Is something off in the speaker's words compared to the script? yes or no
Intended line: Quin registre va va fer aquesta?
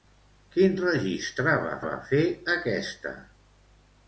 no